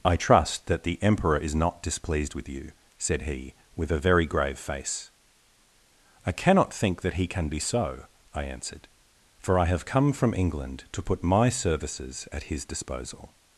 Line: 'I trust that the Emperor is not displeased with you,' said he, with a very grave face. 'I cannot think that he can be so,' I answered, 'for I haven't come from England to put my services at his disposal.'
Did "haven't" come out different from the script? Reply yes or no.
yes